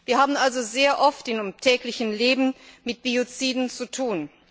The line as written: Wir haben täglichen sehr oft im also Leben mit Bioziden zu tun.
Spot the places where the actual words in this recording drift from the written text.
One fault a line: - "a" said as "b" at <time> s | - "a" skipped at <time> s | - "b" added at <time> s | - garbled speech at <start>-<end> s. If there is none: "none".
- "täglichen" said as "also" at 0.3 s
- "also" said as "täglichen" at 1.6 s